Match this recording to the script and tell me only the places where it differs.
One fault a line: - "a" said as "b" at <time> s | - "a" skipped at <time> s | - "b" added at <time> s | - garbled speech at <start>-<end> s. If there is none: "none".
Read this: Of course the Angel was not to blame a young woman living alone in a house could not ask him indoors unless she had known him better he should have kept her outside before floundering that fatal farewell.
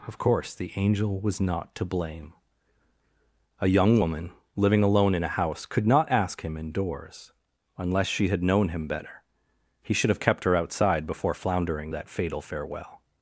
none